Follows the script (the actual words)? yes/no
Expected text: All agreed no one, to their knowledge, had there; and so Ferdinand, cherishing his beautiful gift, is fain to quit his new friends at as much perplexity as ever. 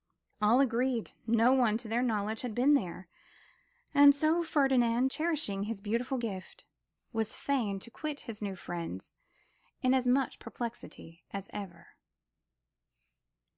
no